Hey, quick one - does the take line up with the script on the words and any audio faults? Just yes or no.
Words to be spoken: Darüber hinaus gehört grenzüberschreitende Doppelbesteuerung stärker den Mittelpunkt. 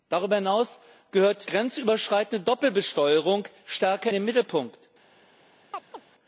no